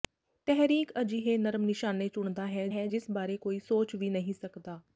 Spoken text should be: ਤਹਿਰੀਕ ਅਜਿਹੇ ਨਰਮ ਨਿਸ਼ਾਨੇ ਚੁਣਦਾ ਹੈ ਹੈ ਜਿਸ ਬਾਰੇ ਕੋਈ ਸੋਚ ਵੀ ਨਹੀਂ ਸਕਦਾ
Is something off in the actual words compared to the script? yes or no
no